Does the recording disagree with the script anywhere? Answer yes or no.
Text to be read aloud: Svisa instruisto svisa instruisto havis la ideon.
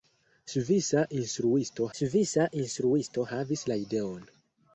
no